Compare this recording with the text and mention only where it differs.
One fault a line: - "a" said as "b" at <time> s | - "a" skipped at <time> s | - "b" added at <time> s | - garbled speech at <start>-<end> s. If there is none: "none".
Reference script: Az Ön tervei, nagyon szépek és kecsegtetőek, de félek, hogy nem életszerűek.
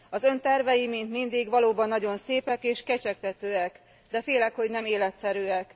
- "mint mindig valóban" added at 0.9 s